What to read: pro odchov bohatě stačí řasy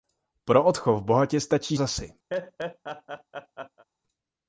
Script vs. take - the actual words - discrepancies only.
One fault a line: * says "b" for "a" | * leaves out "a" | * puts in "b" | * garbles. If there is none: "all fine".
all fine